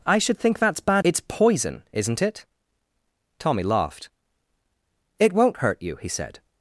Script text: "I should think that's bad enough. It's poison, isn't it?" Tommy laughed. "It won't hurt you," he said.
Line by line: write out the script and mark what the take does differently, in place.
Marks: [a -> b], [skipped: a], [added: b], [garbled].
"I should think that's bad [skipped: enough.] It's poison, isn't it?" Tommy laughed. "It won't hurt you," he said.